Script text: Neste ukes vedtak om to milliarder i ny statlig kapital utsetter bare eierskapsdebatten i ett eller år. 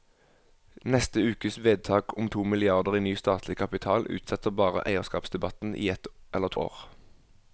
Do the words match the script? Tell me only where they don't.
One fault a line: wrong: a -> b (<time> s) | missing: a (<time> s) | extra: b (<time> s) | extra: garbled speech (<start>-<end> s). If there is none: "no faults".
no faults